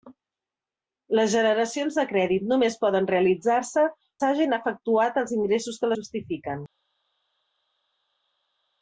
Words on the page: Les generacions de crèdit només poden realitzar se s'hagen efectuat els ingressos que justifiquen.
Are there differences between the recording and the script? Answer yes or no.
no